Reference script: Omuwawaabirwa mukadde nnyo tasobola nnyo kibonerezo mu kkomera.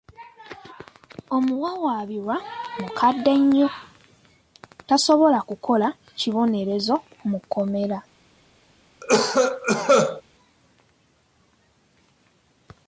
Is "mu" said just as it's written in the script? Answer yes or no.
yes